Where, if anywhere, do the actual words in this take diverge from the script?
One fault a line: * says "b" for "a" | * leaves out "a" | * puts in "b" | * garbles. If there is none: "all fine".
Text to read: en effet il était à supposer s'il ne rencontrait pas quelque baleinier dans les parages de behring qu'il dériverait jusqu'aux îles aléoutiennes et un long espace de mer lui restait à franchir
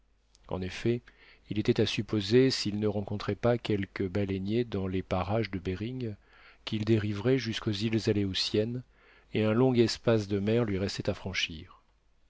all fine